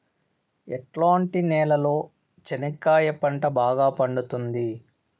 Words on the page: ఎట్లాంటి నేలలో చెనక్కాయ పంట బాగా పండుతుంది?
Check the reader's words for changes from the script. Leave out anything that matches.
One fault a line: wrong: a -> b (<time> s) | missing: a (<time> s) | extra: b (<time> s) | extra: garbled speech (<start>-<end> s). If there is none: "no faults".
no faults